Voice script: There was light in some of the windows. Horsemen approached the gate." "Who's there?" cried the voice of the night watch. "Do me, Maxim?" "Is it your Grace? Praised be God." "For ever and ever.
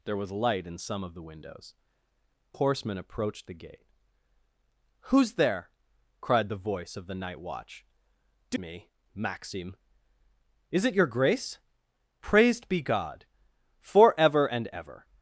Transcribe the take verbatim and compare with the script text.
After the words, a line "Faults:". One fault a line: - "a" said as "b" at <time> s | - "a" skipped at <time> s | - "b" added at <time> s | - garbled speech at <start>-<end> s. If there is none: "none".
There was light in some of the windows. Horsemen approached the gate." "Who's there?" cried the voice of the night watch. "Do me, Maxim?" "Is it your Grace? Praised be God." "For ever and ever.
Faults:
none